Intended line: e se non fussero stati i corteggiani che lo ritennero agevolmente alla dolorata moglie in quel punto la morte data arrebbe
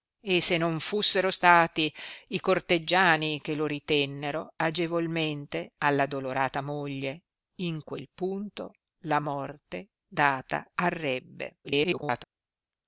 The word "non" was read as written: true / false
true